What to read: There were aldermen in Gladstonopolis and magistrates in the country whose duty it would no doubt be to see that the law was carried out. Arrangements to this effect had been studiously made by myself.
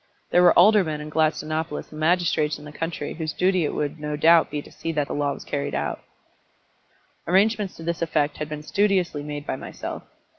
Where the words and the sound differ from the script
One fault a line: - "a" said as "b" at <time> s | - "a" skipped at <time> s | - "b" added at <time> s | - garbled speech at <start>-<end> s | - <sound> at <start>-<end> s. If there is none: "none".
none